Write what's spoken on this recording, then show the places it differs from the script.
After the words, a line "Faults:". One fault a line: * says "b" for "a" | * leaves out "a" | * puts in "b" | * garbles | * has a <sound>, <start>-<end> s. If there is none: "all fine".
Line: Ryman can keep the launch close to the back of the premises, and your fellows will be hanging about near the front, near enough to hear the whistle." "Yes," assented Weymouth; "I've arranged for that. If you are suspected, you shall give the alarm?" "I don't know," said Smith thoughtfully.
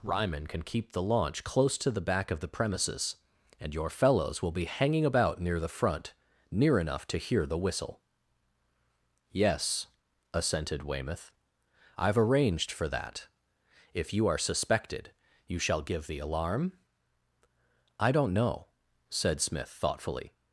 Ryman can keep the launch close to the back of the premises, and your fellows will be hanging about near the front, near enough to hear the whistle." "Yes," assented Weymouth; "I've arranged for that. If you are suspected, you shall give the alarm?" "I don't know," said Smith thoughtfully.
Faults:
all fine